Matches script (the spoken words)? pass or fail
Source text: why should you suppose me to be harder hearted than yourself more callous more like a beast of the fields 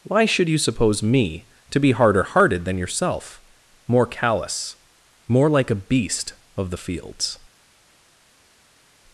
pass